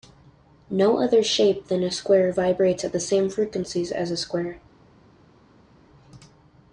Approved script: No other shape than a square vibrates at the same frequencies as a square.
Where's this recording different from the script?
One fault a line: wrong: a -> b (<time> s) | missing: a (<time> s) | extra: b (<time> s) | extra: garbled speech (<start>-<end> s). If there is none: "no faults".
no faults